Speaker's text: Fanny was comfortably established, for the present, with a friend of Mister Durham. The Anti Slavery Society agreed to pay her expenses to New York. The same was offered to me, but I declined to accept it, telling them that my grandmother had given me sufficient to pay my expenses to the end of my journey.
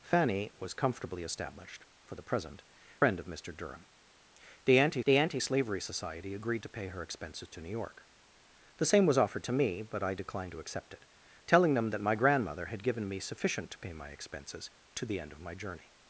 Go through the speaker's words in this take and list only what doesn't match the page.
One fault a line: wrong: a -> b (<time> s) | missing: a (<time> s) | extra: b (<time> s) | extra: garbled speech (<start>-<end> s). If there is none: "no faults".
missing: with a (2.6 s)
extra: the Anti (5.0 s)